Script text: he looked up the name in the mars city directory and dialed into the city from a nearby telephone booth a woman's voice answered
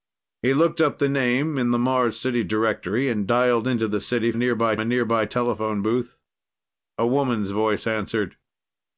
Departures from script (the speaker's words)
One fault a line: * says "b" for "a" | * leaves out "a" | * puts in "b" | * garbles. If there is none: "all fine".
* says "nearby" for "from"